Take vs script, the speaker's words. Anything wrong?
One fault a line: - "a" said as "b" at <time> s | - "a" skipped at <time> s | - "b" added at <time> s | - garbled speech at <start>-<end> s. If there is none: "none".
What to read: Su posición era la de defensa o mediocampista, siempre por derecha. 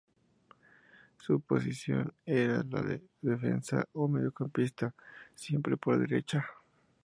none